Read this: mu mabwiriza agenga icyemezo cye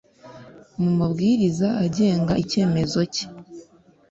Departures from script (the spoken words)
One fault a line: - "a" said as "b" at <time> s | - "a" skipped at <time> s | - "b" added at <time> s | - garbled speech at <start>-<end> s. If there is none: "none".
none